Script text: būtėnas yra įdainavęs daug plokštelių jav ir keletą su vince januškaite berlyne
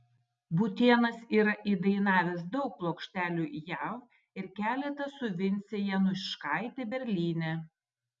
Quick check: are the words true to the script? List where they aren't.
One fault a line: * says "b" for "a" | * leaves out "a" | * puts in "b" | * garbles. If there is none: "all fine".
all fine